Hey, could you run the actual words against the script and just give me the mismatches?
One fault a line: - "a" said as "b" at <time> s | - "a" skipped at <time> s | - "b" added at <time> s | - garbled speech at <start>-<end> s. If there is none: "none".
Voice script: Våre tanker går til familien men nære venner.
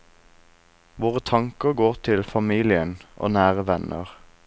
- "men" said as "og" at 3.2 s